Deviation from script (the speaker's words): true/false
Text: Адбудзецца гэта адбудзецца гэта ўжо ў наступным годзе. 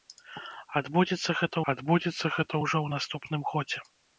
false